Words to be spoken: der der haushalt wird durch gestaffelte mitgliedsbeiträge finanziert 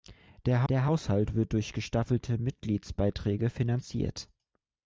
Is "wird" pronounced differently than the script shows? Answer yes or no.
no